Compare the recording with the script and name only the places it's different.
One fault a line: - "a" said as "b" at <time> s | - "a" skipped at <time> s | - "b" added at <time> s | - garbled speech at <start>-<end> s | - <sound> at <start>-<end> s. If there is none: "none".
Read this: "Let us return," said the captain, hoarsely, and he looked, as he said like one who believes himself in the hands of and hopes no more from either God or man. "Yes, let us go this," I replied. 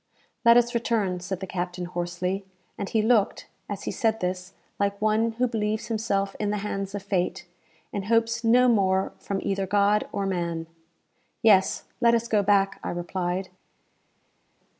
- "this" added at 4.2 s
- "fate" added at 7.0 s
- "this" said as "back" at 12.4 s